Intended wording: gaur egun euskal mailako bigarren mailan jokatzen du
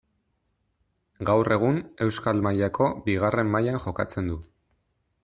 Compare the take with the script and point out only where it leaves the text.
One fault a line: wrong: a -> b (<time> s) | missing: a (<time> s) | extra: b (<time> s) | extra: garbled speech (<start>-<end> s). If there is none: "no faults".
no faults